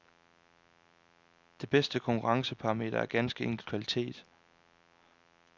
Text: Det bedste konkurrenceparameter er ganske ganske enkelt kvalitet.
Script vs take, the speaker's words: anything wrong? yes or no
yes